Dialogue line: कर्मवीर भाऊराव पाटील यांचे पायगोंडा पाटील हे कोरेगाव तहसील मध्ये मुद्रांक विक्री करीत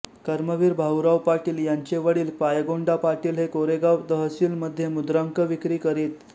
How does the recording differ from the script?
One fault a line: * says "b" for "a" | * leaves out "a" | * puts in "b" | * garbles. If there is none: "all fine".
* puts in "वडील"